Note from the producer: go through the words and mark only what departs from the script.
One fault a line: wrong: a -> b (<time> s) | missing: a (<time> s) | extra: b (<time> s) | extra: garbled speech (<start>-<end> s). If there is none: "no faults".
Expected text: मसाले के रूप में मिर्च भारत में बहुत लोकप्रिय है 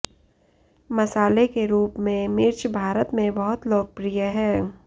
no faults